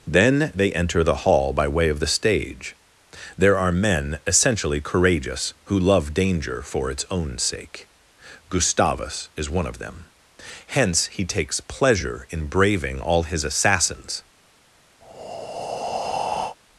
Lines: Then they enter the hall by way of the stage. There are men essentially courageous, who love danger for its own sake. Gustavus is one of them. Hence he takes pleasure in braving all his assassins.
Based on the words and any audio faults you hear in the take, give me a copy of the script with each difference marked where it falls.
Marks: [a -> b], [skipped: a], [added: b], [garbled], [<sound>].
Then they enter the hall by way of the stage. There are men essentially courageous, who love danger for its own sake. Gustavus is one of them. Hence he takes pleasure in braving all his assassins. [breath]